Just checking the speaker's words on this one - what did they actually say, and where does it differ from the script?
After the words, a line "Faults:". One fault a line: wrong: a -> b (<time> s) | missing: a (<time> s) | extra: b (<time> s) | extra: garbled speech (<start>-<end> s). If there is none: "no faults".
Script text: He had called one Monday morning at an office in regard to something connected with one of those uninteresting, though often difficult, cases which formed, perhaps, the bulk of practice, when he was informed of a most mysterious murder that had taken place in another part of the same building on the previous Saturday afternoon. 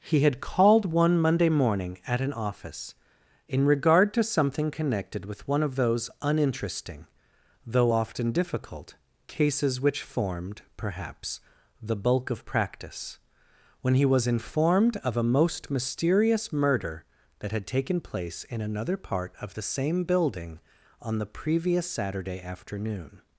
He had called one Monday morning at an office in regard to something connected with one of those uninteresting, though often difficult, cases which formed, perhaps, the bulk of practice, when he was informed of a most mysterious murder that had taken place in another part of the same building on the previous Saturday afternoon.
Faults:
no faults